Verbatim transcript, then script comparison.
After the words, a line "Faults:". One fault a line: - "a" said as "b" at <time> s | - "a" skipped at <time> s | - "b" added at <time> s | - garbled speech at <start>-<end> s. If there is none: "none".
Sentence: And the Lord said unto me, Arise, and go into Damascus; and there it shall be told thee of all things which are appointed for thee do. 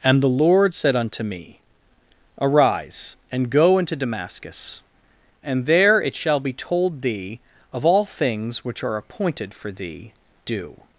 And the Lord said unto me, Arise, and go into Damascus; and there it shall be told thee of all things which are appointed for thee do.
Faults:
none